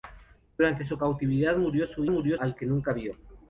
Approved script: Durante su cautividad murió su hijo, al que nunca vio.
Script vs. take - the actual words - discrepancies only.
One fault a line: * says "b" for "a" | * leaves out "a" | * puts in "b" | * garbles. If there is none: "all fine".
* says "murió" for "hijo"